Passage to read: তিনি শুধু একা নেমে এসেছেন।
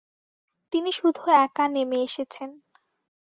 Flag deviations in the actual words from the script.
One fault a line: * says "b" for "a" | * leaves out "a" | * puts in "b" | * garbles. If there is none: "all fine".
all fine